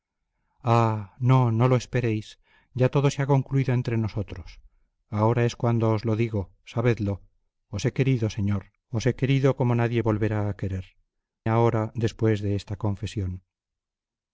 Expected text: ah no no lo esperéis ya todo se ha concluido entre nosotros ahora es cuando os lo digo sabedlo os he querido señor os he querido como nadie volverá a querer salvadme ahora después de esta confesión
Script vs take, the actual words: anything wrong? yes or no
yes